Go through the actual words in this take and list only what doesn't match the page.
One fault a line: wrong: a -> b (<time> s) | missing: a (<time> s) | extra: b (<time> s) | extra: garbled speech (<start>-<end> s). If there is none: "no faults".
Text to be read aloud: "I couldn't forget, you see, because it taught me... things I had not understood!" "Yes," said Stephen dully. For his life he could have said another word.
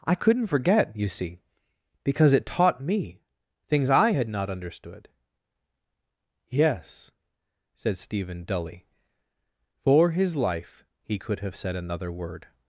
no faults